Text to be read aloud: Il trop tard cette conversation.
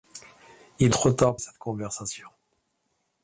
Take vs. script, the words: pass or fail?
pass